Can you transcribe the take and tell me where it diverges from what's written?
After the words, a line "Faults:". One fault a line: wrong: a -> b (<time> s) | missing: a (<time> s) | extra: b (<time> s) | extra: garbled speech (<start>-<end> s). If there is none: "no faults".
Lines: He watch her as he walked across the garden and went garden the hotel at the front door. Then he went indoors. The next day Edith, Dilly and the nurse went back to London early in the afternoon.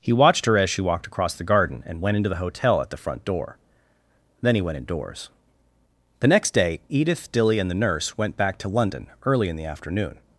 He watched her as she walked across the garden and went into the hotel at the front door. Then he went indoors. The next day Edith, Dilly and the nurse went back to London early in the afternoon.
Faults:
wrong: watch -> watched (0.1 s)
wrong: he -> she (0.7 s)
wrong: garden -> into (2.2 s)